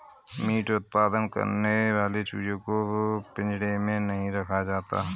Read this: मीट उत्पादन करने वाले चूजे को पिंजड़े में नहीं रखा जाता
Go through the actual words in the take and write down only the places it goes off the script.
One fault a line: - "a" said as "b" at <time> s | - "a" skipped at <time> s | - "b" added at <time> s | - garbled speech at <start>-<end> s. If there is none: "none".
none